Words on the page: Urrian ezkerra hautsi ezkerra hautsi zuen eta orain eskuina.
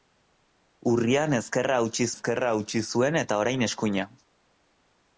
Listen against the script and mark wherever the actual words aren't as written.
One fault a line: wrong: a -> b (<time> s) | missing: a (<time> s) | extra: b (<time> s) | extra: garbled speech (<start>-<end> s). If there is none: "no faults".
no faults